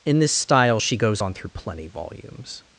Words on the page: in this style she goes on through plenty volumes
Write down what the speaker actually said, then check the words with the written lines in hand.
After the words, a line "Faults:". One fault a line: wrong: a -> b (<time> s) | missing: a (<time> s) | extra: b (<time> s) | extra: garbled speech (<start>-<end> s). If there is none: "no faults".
in this style she goes on through plenty volumes
Faults:
no faults